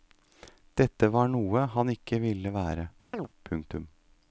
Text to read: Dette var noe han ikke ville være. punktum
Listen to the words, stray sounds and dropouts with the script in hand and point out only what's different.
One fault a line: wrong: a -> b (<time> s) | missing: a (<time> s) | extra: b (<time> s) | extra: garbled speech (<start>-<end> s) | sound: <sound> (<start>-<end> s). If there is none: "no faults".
sound: chirp (3.1-3.3 s)